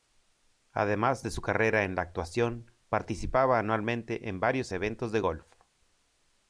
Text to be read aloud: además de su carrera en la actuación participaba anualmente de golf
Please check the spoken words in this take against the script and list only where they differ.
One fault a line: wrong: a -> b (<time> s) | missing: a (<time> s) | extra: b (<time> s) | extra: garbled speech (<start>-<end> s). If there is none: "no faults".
extra: en varios eventos (4.3 s)